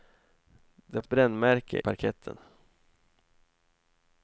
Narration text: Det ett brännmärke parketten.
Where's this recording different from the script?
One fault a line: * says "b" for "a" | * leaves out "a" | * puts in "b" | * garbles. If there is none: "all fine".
all fine